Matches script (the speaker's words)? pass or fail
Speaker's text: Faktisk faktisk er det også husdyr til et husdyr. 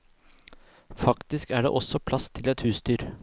fail